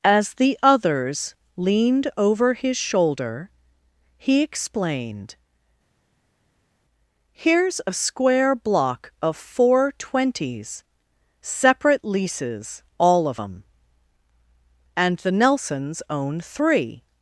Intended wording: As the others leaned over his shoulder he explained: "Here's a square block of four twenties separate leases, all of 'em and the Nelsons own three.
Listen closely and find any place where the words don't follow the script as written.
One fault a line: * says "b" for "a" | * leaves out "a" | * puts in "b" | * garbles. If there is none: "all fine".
all fine